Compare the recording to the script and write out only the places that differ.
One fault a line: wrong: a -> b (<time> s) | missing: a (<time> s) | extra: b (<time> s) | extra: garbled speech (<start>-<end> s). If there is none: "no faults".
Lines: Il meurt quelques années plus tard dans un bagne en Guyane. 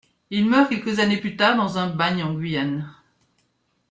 no faults